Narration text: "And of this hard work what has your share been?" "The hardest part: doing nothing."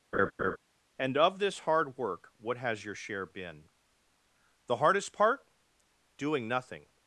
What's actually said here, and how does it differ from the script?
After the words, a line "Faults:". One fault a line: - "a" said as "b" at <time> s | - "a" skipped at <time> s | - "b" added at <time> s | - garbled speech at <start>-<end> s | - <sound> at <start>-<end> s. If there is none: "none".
"And of this hard work what has your share been?" "The hardest part: doing nothing."
Faults:
- laugh at 0.1-0.6 s